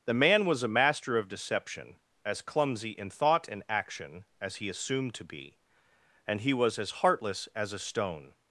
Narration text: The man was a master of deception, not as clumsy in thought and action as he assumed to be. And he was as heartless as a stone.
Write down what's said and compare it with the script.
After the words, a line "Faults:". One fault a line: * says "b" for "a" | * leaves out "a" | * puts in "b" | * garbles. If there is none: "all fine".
The man was a master of deception, as clumsy in thought and action as he assumed to be. And he was as heartless as a stone.
Faults:
* leaves out "not"